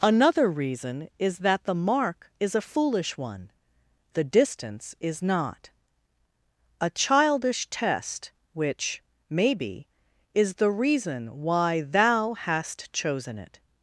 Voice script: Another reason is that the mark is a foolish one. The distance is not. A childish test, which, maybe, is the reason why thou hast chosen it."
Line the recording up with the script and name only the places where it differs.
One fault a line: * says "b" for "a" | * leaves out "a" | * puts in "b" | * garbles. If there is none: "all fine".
all fine